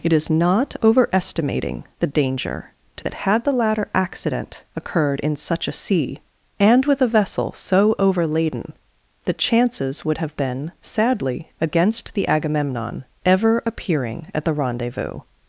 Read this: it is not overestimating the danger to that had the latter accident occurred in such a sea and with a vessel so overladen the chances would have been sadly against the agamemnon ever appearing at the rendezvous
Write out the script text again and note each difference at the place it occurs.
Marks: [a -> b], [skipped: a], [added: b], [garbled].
it is not overestimating the danger to that had the latter accident occurred in such a sea and with a vessel so overladen the chances would have been sadly against the agamemnon ever appearing at the rendezvous